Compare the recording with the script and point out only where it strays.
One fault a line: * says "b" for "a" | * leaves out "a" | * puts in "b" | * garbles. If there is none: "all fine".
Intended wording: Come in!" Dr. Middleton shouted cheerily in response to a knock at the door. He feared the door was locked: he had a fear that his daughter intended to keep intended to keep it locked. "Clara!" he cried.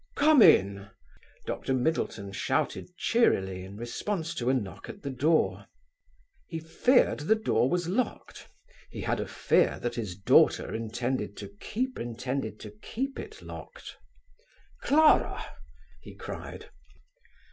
all fine